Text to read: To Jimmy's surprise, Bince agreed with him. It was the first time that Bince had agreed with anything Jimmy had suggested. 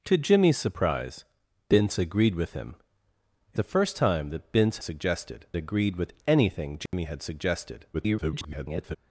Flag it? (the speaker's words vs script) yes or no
yes